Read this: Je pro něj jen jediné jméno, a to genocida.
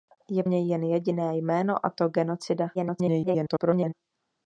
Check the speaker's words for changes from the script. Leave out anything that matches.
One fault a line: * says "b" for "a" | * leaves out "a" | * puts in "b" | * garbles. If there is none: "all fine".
* leaves out "pro"
* garbles